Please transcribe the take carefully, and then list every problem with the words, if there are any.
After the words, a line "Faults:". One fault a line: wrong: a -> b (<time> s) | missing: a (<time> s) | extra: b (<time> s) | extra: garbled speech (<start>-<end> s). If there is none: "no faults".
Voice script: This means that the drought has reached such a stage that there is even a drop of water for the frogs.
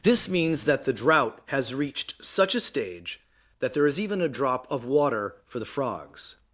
This means that the drought has reached such a stage that there is even a drop of water for the frogs.
Faults:
no faults